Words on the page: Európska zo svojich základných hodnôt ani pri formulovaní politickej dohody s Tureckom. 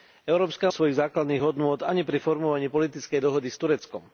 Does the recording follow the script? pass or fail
pass